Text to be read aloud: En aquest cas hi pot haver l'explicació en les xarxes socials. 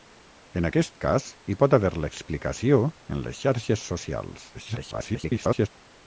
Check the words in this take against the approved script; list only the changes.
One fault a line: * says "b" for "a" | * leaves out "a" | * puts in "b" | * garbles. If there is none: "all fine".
* garbles